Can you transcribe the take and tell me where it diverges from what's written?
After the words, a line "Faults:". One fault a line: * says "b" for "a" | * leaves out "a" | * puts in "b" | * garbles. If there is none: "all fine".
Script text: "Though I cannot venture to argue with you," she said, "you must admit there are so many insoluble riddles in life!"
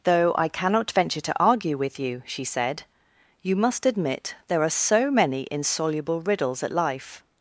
"Though I cannot venture to argue with you," she said, "you must admit there are so many insoluble riddles at life!"
Faults:
* says "at" for "in"